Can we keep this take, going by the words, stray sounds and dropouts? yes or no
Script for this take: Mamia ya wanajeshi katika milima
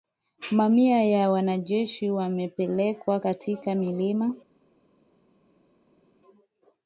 no